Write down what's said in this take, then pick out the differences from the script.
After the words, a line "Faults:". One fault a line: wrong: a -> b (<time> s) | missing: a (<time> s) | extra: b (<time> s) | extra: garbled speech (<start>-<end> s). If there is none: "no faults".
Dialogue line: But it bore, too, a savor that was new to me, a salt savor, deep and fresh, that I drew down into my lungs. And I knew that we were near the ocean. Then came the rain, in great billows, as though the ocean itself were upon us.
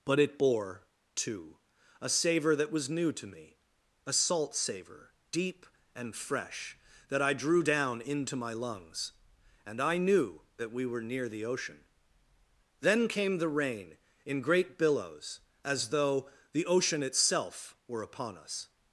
But it bore, too, a savor that was new to me, a salt savor, deep and fresh, that I drew down into my lungs. And I knew that we were near the ocean. Then came the rain, in great billows, as though the ocean itself were upon us.
Faults:
no faults